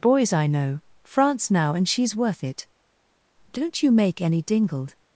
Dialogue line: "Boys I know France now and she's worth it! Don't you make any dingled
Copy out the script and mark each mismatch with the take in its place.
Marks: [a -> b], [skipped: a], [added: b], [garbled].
"Boys I know France now and she's worth it! Don't you make any dingled